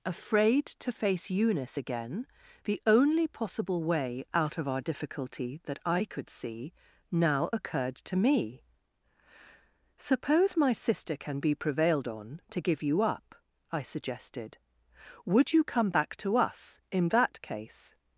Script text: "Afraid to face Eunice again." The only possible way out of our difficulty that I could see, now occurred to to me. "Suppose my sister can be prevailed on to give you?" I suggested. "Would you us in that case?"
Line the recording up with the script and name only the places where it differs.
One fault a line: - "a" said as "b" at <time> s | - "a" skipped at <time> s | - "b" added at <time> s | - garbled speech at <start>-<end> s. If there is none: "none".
- "to" skipped at 8.2 s
- "up" added at 13.0 s
- "come back to" added at 15.6 s